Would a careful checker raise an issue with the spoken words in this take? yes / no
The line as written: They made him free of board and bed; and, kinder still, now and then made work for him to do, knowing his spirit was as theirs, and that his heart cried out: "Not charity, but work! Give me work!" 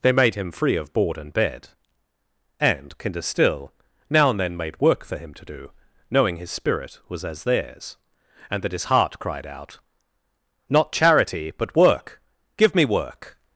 no